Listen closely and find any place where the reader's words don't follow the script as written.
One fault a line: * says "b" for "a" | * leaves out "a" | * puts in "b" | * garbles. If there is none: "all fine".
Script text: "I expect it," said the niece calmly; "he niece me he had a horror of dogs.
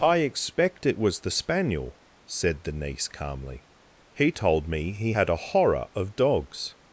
* puts in "was the spaniel"
* says "told" for "niece"